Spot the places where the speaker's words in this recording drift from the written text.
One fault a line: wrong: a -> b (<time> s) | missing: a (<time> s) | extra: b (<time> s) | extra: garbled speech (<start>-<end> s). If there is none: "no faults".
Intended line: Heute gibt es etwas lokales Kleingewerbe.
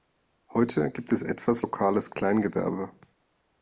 no faults